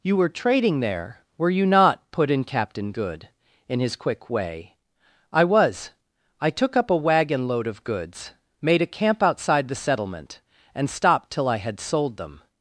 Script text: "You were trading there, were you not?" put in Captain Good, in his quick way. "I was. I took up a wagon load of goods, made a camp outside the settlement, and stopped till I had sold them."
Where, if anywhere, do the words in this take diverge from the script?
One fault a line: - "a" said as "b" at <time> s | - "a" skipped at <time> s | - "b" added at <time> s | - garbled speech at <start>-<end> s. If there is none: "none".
none